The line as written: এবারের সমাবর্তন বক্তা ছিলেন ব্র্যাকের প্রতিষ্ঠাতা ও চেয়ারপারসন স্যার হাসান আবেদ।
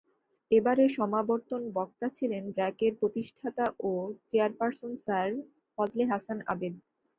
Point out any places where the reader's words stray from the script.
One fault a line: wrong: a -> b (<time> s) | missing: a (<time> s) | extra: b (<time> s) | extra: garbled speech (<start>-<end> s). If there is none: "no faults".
extra: ফজলে (5.8 s)